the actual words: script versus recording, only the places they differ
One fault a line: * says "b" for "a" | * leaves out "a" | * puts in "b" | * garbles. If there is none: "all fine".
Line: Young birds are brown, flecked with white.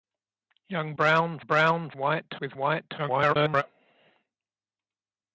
* says "brown" for "birds"
* says "white" for "flecked"
* garbles